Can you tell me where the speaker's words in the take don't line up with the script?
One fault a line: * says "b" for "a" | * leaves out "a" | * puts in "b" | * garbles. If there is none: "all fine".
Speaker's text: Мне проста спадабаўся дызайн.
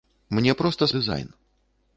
* leaves out "спадабаўся"